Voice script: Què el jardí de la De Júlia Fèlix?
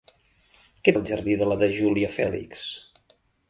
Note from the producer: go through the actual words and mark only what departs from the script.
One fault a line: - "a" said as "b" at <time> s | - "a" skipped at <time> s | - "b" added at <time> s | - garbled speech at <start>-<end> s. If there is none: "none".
none